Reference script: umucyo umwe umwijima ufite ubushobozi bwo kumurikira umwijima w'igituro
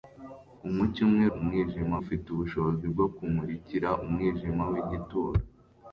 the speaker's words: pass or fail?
pass